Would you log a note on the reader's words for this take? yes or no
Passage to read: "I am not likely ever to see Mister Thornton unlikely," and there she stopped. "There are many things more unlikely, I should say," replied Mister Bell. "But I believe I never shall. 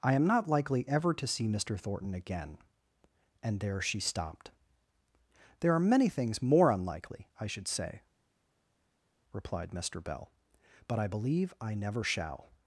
yes